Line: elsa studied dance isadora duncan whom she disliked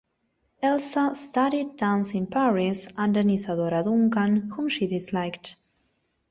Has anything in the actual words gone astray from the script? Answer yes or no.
yes